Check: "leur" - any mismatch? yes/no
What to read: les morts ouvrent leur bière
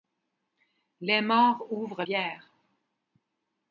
yes